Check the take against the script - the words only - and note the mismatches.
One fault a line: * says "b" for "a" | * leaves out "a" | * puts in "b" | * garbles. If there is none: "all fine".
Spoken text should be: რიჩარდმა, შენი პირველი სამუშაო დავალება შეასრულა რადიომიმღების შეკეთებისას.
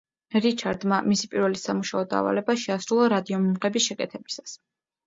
* says "მისი" for "შენი"